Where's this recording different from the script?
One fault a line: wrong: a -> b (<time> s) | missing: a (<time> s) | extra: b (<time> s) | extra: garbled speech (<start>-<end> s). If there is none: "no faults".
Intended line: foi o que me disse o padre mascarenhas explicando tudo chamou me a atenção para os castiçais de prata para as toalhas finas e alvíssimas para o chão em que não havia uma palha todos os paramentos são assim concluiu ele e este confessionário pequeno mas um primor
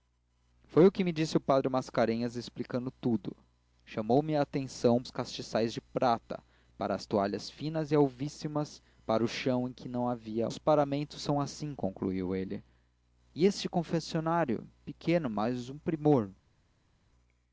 missing: para (5.0 s)
missing: uma palha todos (10.5 s)